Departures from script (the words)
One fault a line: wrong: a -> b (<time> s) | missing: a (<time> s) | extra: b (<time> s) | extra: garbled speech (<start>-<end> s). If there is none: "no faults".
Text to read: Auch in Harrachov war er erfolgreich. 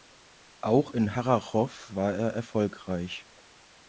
no faults